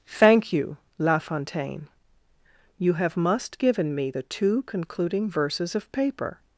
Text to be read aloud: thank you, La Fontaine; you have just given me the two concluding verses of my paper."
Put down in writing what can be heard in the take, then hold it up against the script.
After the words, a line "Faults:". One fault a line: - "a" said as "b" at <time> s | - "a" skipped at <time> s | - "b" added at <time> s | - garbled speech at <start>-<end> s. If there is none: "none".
thank you, La Fontaine; you have must given me the two concluding verses of paper."
Faults:
- "just" said as "must" at 3.1 s
- "my" skipped at 5.9 s